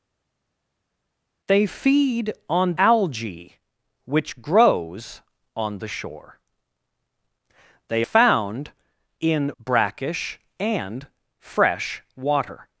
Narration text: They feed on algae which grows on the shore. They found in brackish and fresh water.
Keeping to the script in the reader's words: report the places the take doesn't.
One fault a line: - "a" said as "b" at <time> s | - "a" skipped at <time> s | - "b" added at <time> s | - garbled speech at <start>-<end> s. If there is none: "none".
none